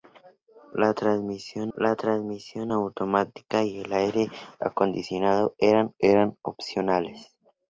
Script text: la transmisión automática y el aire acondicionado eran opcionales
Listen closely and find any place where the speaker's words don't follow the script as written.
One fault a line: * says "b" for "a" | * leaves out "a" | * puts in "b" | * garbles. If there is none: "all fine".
* puts in "la transmisión"
* puts in "eran"